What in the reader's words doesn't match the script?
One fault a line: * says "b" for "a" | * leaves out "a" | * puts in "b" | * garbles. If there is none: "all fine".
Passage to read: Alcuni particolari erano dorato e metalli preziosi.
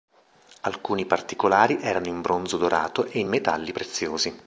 * puts in "in bronzo"
* puts in "in"